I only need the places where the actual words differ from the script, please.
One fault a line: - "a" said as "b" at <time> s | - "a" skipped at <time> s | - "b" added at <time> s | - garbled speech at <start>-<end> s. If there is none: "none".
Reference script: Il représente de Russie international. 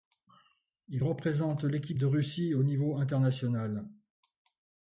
- "l'équipe" added at 1.6 s
- "au niveau" added at 2.5 s